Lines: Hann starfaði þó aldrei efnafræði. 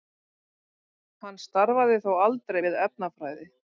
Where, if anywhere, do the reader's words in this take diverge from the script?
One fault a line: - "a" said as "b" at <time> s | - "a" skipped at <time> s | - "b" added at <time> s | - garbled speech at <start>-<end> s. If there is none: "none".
- "við" added at 2.6 s